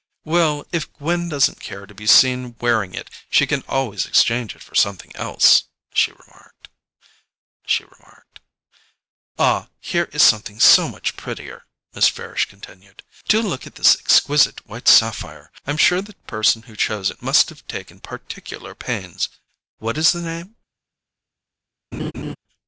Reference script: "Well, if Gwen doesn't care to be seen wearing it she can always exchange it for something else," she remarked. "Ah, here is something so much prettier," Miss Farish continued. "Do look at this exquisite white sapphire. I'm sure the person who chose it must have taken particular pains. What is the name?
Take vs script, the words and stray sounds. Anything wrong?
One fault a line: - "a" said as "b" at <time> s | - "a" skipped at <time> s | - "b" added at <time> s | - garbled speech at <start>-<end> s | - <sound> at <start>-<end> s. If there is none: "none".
- "she remarked" added at 7.7 s
- laugh at 21.9-22.4 s